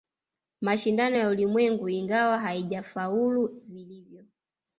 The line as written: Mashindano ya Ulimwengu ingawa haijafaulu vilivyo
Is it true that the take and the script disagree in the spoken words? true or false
false